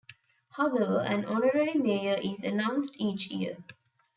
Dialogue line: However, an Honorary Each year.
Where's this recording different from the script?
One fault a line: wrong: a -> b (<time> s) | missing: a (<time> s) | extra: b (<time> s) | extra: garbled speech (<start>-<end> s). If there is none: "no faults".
extra: Mayor is announced (1.8 s)